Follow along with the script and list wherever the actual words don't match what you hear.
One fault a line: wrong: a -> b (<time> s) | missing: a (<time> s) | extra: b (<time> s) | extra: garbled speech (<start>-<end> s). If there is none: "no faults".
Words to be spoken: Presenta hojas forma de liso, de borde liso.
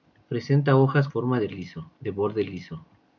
no faults